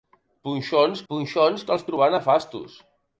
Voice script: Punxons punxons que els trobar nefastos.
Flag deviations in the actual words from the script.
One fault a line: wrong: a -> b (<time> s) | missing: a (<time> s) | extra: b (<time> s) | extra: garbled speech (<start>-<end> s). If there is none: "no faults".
no faults